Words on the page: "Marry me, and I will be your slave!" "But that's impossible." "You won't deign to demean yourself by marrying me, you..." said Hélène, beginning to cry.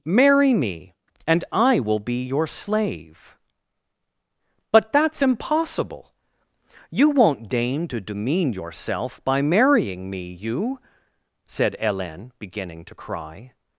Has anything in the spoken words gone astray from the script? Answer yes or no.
no